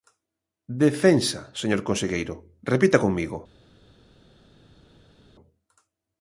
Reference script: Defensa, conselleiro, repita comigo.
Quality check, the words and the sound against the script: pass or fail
fail